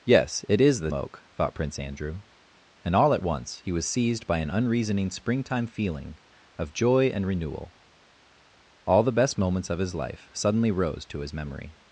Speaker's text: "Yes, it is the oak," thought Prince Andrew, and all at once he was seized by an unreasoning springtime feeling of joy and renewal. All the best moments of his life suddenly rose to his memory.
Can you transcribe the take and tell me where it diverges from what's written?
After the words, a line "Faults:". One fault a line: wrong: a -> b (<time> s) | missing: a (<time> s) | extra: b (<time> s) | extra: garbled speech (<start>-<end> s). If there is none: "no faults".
"Yes, it is the oak," thought Prince Andrew, and all at once he was seized by an unreasoning springtime feeling of joy and renewal. All the best moments of his life suddenly rose to his memory.
Faults:
no faults